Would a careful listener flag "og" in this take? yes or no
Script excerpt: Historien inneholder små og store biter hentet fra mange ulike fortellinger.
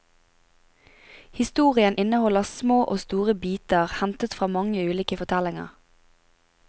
no